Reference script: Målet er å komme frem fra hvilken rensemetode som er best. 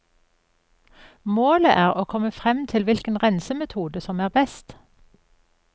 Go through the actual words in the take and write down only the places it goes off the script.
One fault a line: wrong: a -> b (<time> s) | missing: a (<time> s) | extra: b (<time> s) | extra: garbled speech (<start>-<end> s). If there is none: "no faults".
wrong: fra -> til (2.7 s)